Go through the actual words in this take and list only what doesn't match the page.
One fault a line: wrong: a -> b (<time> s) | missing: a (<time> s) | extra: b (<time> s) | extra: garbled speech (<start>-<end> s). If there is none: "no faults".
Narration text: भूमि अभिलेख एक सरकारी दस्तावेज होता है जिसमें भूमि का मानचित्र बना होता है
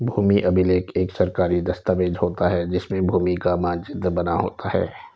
no faults